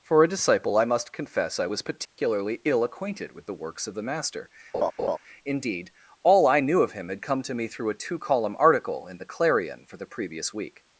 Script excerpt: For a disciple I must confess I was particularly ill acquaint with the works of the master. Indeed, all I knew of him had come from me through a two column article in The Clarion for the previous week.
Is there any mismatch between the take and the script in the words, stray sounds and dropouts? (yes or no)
yes